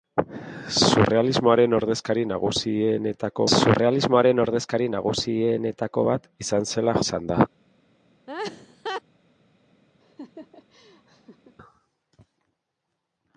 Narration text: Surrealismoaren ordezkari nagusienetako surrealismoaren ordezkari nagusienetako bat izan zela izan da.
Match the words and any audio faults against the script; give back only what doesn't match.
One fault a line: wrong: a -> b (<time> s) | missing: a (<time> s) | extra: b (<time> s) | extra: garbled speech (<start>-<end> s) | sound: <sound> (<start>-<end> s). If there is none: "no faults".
sound: laugh (8.3-9.0 s)
sound: laugh (10.0-11.6 s)